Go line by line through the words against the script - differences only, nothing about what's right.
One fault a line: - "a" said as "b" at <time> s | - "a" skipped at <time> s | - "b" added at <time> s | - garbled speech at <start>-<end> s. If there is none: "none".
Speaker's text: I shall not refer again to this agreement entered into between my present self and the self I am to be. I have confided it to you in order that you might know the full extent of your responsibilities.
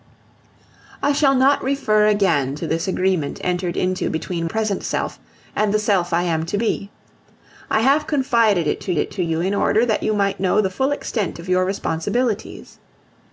- "my" skipped at 4.5 s
- "it to" added at 9.0 s